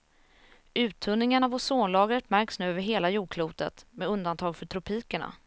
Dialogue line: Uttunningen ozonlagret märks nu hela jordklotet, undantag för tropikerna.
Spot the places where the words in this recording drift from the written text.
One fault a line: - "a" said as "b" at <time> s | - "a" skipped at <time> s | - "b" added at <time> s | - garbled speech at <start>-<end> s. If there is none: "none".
- "av" added at 1.4 s
- "över" added at 2.7 s
- "med" added at 3.9 s